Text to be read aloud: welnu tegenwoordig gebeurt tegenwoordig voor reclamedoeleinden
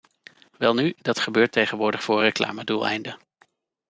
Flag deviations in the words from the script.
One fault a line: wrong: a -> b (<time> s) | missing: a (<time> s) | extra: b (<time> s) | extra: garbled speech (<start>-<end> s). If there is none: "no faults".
wrong: tegenwoordig -> dat (0.9 s)